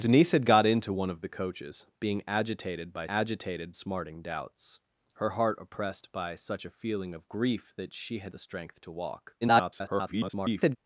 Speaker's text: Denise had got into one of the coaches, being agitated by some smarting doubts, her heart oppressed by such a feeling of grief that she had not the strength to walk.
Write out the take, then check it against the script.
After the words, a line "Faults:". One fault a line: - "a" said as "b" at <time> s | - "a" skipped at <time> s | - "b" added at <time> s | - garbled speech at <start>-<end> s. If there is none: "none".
Denise had got into one of the coaches, being agitated by agitated smarting doubts, her heart oppressed by such a feeling of grief that she had the strength to walk. [garbled]
Faults:
- "some" said as "agitated" at 3.1 s
- "not" skipped at 8.3 s
- garbled speech at 9.4-10.8 s